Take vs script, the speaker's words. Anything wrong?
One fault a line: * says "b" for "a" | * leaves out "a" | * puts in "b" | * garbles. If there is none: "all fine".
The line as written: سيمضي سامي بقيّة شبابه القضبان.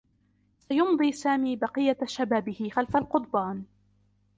* puts in "خلف"